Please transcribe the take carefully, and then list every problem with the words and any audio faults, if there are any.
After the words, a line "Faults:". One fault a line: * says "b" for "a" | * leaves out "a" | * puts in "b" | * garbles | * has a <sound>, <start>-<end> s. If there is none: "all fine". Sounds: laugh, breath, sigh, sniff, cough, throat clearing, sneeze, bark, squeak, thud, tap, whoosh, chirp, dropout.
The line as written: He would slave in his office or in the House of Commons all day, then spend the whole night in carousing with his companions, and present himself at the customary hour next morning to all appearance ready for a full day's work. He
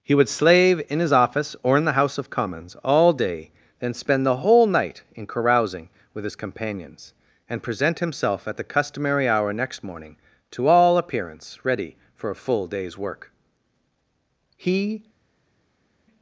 He would slave in his office or in the House of Commons all day, then spend the whole night in carousing with his companions, and present himself at the customary hour next morning to all appearance ready for a full day's work. He
Faults:
all fine